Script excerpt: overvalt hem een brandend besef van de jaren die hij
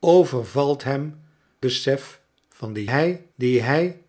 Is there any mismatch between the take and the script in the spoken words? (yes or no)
yes